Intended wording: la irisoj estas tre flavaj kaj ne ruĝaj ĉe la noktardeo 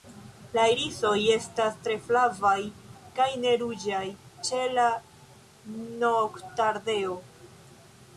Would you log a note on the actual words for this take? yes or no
no